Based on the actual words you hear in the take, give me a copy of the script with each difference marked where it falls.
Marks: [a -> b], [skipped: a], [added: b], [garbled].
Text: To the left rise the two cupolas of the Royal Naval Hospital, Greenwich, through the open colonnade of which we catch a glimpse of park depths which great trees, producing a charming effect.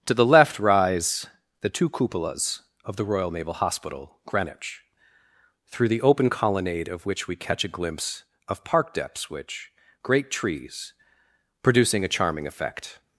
To the left rise the two cupolas of the Royal Naval Hospital, Greenwich, through the open colonnade of which we catch a glimpse of park depths which great trees, producing a charming effect.